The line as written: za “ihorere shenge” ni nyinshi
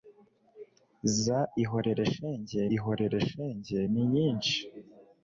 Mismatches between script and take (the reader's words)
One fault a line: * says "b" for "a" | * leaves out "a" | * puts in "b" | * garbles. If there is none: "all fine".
* puts in "ihorere shenge"